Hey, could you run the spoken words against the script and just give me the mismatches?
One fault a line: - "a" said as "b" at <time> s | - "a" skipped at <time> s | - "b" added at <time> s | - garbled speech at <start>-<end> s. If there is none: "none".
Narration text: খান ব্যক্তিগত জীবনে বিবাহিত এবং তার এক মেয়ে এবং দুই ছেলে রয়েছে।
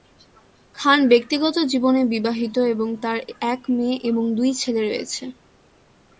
none